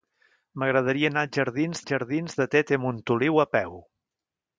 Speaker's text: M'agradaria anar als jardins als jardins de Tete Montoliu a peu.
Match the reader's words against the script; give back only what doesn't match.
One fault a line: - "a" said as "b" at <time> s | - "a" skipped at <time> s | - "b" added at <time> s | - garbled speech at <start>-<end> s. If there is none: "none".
none